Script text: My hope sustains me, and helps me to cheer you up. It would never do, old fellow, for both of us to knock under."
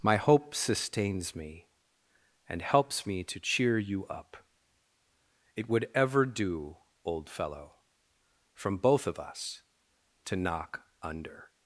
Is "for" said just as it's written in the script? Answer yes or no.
no